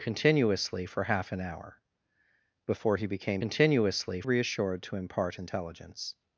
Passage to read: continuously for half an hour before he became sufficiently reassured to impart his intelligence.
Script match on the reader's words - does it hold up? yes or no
no